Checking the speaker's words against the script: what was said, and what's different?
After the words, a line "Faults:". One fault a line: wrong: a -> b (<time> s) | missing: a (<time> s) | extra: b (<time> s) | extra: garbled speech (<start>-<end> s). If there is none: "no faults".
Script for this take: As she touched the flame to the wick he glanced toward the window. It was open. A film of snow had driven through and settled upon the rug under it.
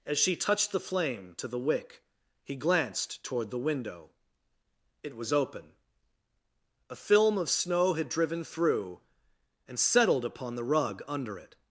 As she touched the flame to the wick he glanced toward the window. It was open. A film of snow had driven through and settled upon the rug under it.
Faults:
no faults